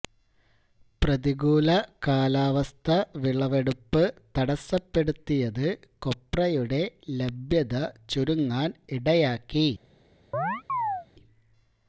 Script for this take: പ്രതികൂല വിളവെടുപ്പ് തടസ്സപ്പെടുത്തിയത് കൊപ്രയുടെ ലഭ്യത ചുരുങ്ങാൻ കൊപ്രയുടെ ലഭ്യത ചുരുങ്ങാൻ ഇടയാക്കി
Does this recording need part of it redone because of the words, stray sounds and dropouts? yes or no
yes